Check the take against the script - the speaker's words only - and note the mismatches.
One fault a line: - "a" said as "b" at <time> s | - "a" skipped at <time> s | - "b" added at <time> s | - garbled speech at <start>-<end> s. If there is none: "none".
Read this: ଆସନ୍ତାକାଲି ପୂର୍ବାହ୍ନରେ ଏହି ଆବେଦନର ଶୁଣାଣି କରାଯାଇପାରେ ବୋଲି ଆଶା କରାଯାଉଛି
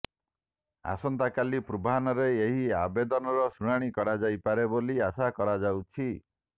none